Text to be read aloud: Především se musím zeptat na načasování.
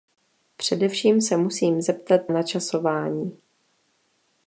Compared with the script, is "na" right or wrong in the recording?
wrong